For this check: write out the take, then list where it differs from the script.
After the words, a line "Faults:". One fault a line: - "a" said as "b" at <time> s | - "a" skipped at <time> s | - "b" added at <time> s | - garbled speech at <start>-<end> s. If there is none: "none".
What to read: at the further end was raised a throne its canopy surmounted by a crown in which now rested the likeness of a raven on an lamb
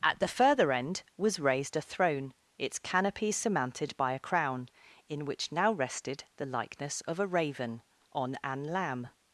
at the further end was raised a throne its canopy surmounted by a crown in which now rested the likeness of a raven on an lamb
Faults:
none